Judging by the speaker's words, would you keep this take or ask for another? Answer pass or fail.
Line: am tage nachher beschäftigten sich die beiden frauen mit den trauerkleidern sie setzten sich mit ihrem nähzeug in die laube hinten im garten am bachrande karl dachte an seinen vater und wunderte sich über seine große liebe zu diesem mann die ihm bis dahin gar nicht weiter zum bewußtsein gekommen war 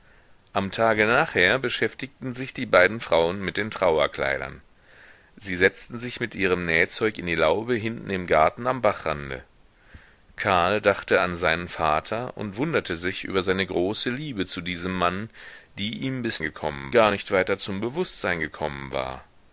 fail